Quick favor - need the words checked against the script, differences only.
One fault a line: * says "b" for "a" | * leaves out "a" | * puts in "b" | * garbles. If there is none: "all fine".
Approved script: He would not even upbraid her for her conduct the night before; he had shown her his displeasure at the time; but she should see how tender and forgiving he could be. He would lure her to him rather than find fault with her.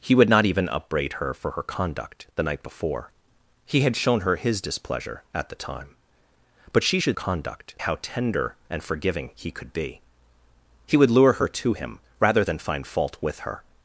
* says "conduct" for "see"